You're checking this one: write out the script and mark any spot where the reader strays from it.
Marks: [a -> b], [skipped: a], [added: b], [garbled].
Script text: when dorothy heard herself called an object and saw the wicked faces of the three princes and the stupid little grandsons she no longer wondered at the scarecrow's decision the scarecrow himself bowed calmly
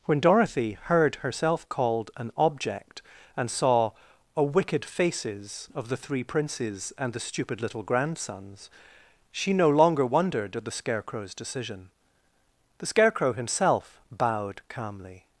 when dorothy heard herself called an object and saw [the -> a] wicked faces of the three princes and the stupid little grandsons she no longer wondered at the scarecrow's decision the scarecrow himself bowed calmly